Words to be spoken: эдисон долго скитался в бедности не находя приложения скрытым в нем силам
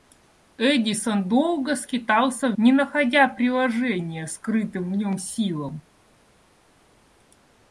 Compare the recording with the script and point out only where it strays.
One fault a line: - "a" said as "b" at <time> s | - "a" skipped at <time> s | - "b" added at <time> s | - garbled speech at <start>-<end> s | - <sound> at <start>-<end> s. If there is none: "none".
- "бедности" skipped at 2.6 s